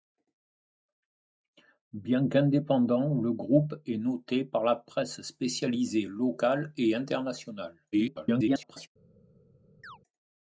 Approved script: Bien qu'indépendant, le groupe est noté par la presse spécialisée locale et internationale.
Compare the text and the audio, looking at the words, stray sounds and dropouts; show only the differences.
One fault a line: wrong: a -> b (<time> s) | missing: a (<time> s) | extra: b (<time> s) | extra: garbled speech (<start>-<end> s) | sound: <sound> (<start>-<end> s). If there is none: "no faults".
extra: garbled speech (7.9-8.9 s)
sound: chirp (9.8-10.0 s)